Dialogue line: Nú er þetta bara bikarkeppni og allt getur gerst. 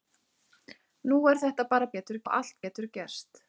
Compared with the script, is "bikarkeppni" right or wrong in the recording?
wrong